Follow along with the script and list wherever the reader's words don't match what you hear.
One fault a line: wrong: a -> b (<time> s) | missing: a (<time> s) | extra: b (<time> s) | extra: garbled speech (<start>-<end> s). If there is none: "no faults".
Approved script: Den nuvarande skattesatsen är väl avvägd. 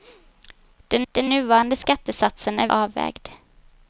extra: den (1.1 s)
missing: väl (2.7 s)